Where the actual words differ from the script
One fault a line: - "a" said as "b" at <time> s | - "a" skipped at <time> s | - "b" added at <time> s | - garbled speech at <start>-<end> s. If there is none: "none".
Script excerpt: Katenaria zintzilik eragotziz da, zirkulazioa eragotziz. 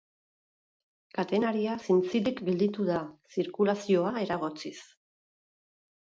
- "eragotziz" said as "gelditu" at 2.5 s